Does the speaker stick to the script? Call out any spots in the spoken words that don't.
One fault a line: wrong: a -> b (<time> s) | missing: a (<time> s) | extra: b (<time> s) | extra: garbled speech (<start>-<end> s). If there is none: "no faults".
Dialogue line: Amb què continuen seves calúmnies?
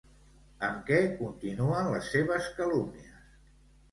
extra: les (1.9 s)